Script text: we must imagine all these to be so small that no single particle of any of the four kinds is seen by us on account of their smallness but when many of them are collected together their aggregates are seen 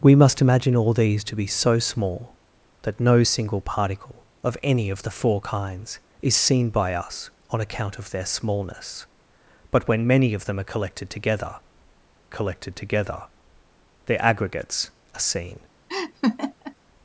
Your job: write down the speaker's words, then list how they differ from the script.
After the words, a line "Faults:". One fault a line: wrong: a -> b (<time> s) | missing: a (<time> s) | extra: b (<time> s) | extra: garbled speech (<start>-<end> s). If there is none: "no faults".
we must imagine all these to be so small that no single particle of any of the four kinds is seen by us on account of their smallness but when many of them are collected together collected together their aggregates are seen
Faults:
extra: collected together (12.3 s)